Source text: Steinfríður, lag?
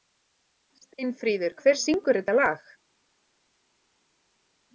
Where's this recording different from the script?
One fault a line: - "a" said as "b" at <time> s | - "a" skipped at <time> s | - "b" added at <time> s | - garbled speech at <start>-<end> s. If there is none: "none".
- "hver syngur þetta" added at 1.6 s